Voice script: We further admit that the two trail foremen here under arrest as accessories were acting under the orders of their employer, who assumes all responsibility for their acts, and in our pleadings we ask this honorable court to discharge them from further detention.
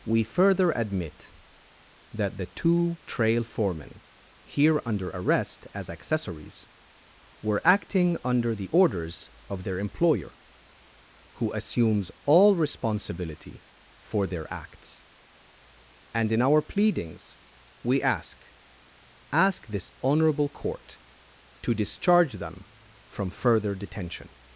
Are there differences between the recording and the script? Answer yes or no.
yes